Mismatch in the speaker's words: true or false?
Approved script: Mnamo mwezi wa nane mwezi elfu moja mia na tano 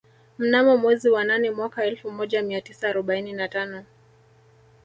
true